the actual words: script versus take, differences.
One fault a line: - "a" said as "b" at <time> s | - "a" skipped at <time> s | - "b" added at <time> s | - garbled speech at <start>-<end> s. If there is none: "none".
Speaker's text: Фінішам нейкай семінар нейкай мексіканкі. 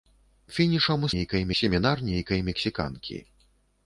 none